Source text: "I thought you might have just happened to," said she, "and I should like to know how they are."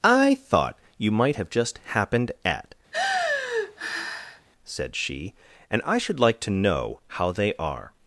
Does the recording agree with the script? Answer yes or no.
no